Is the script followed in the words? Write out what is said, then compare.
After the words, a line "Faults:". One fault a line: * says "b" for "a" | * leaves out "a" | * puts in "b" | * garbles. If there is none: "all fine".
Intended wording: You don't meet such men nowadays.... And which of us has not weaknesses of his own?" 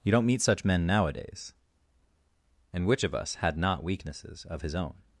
You don't meet such men nowadays.... And which of us had not weaknesses of his own?"
Faults:
* says "had" for "has"